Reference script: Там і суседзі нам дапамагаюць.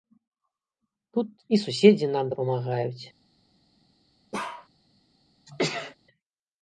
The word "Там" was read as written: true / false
false